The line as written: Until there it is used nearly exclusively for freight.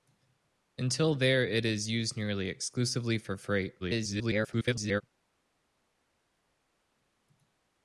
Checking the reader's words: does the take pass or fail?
fail